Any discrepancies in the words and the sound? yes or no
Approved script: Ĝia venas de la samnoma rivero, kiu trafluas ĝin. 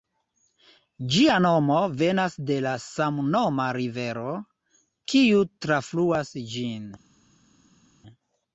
yes